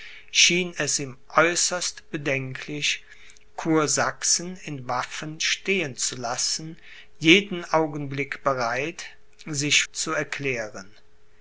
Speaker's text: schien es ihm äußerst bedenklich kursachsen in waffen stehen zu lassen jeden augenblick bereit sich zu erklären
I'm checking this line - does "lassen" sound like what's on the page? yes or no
yes